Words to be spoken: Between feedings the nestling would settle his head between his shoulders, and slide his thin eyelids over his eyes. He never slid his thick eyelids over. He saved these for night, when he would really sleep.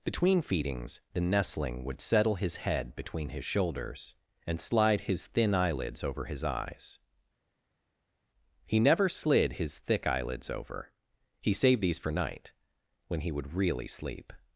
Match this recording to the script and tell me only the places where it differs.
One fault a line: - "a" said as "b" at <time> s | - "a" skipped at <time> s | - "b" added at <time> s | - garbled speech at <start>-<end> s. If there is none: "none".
none